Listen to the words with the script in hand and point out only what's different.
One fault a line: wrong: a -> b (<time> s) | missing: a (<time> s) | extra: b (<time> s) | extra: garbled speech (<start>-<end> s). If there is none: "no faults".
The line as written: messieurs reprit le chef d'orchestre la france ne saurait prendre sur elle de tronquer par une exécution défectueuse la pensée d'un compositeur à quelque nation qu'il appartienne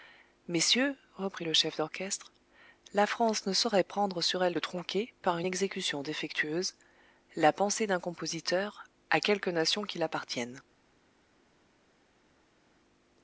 no faults